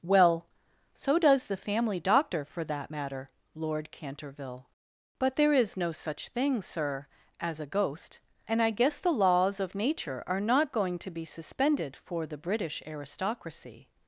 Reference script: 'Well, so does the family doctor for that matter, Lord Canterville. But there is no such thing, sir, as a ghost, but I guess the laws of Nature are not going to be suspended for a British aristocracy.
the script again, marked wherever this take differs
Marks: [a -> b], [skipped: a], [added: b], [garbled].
'Well, so does the family doctor for that matter, Lord Canterville. But there is no such thing, sir, as a ghost, [but -> and] I guess the laws of Nature are not going to be suspended for [a -> the] British aristocracy.